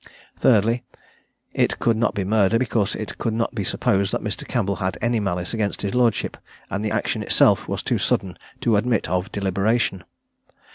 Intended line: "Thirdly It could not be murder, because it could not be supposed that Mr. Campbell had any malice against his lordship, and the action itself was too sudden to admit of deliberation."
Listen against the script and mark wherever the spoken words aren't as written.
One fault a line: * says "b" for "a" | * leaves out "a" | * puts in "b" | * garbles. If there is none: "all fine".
all fine